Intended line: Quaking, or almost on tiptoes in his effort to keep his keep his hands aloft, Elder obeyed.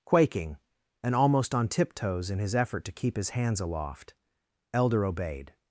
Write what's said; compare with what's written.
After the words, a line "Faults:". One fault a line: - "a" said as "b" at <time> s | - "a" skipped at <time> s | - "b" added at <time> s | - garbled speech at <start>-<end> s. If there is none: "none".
Quaking, and almost on tiptoes in his effort to keep his hands aloft, Elder obeyed.
Faults:
- "or" said as "and" at 1.0 s
- "keep his" skipped at 3.3 s